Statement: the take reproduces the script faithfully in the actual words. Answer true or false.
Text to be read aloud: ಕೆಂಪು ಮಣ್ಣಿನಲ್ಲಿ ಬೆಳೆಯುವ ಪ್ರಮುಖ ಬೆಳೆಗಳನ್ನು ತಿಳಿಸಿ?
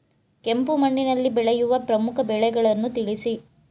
true